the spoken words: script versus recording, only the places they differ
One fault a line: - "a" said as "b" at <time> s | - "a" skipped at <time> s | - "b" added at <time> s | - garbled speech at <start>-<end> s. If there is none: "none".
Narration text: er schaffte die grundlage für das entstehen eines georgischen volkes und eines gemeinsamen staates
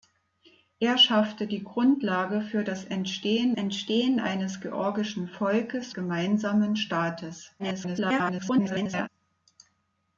- "entstehen" added at 3.5 s
- "und eines" skipped at 5.9 s
- garbled speech at 7.6-9.1 s